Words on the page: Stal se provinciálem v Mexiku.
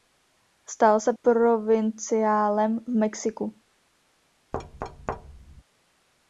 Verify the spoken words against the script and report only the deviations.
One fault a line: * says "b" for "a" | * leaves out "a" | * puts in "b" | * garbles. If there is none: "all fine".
all fine